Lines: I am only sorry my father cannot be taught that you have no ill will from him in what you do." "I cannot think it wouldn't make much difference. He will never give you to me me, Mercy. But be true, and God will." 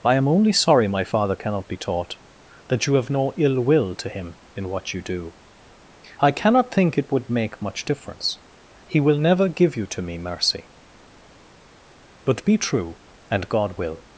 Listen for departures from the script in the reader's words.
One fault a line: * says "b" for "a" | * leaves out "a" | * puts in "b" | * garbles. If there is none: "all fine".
* says "to" for "from"
* says "would" for "wouldn't"
* leaves out "me"